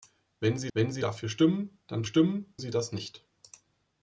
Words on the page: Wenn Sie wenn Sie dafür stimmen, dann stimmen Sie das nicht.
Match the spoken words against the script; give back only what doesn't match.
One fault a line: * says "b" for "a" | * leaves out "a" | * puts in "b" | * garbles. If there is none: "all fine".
all fine